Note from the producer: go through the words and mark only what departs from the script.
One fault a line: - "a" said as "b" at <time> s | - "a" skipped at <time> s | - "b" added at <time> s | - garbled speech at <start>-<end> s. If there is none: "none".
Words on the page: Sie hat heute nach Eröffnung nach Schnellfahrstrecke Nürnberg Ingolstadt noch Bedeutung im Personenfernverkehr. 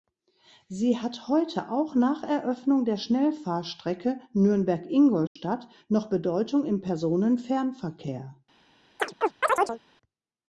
- "auch" added at 1.7 s
- "nach" said as "der" at 2.9 s